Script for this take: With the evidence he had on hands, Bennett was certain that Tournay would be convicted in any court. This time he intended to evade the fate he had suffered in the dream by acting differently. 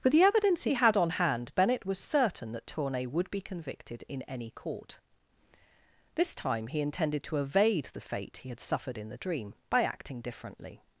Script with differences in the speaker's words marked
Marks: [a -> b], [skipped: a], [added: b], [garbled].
With the evidence he had on [hands, -> hand] Bennett was certain that Tournay would be convicted in any court. This time he intended to evade the fate he had suffered in the dream by acting differently.